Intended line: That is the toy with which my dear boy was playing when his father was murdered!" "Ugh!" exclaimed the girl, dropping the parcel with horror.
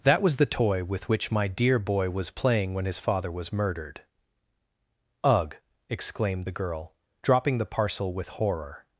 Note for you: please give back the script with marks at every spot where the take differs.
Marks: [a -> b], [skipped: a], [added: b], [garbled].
That [is -> was] the toy with which my dear boy was playing when his father was murdered!" "Ugh!" exclaimed the girl, dropping the parcel with horror.